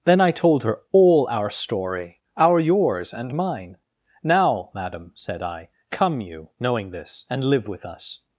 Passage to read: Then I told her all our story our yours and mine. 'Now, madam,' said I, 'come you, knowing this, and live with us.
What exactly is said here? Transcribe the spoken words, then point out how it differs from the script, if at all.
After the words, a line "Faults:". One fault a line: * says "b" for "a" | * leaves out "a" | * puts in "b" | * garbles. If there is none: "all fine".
Then I told her all our story our yours and mine. 'Now, madam,' said I, 'come you, knowing this, and live with us.
Faults:
all fine